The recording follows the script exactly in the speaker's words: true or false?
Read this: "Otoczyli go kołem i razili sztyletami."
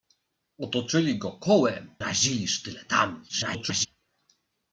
false